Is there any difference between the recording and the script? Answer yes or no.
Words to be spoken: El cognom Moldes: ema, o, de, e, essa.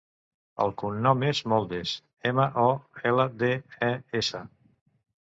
yes